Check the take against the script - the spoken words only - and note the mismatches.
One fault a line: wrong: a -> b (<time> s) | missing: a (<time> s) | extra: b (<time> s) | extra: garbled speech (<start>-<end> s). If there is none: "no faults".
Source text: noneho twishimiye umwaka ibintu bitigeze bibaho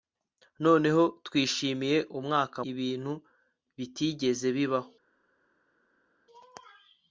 no faults